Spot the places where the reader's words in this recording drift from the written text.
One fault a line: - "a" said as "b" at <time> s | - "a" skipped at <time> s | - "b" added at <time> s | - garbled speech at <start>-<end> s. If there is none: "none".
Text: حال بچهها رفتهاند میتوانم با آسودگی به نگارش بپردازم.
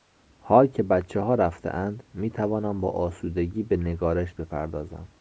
- "که" added at 0.7 s